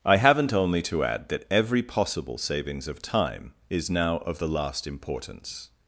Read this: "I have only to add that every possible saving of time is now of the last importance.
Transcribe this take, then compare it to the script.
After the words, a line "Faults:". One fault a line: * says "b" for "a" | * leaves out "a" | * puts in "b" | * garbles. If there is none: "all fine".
"I haven't only to add that every possible savings of time is now of the last importance.
Faults:
* says "haven't" for "have"
* says "savings" for "saving"